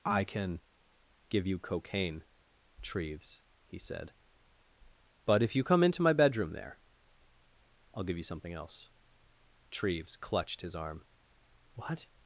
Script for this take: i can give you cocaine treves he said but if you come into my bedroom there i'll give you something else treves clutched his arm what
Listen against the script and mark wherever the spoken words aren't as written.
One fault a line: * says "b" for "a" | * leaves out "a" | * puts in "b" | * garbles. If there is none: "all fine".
all fine